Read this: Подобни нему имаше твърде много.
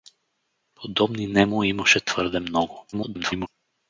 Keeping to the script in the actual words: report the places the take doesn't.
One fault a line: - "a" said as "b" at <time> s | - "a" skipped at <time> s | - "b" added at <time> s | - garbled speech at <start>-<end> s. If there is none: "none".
- garbled speech at 2.9-3.5 s